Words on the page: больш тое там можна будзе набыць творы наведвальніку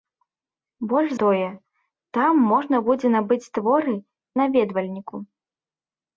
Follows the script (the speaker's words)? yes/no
yes